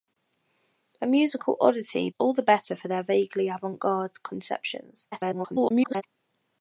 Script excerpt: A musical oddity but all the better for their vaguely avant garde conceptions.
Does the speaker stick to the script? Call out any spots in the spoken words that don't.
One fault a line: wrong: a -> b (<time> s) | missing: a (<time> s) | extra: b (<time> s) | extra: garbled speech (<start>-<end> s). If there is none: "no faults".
missing: but (2.1 s)
extra: garbled speech (5.1-6.0 s)